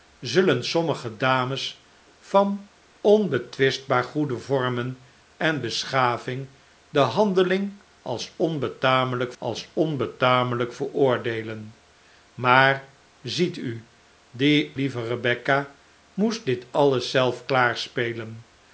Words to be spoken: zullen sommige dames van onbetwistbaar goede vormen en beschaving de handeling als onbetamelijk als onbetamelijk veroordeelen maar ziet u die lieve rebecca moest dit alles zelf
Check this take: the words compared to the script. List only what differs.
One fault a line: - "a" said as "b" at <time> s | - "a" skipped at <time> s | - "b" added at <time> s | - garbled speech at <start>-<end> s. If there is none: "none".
none